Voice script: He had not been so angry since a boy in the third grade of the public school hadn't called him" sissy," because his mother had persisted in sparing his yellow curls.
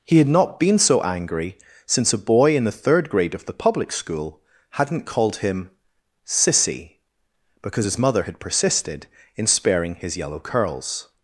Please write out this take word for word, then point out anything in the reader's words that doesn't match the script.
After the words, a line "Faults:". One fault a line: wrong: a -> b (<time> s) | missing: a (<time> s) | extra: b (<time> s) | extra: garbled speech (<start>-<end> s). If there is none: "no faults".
He had not been so angry since a boy in the third grade of the public school hadn't called him" sissy," because his mother had persisted in sparing his yellow curls.
Faults:
no faults